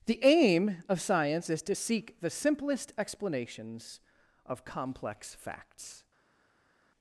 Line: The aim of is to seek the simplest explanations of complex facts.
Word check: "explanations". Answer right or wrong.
right